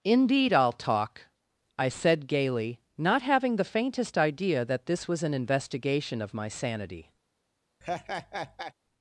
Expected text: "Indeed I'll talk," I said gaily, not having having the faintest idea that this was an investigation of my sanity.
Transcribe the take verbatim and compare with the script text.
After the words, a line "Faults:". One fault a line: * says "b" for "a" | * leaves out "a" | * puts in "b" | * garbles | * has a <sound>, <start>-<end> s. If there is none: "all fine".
"Indeed I'll talk," I said gaily, not having the faintest idea that this was an investigation of my sanity.
Faults:
* leaves out "having"
* has a laugh, 7.8-8.7 s